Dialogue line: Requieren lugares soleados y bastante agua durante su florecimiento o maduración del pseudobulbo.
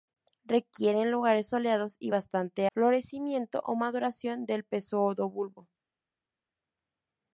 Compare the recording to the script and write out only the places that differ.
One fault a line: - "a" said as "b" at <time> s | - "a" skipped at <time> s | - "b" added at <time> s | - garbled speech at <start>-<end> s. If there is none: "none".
- "agua durante su" skipped at 2.7 s